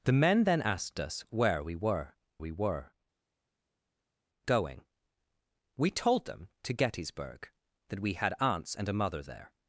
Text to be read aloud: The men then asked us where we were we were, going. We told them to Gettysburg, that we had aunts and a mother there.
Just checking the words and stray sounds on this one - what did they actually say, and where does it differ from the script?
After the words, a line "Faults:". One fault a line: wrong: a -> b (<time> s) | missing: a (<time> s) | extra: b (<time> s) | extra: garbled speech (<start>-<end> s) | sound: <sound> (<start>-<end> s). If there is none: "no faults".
The men then asked us where we were we were, going. We told them to Gettysburg, that we had aunts and a mother there.
Faults:
no faults